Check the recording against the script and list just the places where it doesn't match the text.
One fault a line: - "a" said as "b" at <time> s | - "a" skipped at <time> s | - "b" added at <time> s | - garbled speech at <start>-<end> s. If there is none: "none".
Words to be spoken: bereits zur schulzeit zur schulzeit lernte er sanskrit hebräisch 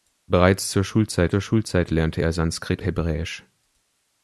none